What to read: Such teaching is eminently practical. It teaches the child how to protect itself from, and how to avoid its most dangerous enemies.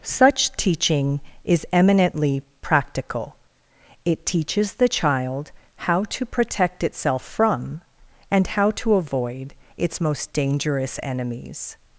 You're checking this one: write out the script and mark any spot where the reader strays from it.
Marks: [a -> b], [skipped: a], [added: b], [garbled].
Such teaching is eminently practical. It teaches the child how to protect itself from, and how to avoid its most dangerous enemies.